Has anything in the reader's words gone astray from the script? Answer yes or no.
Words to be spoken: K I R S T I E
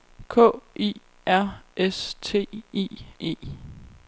no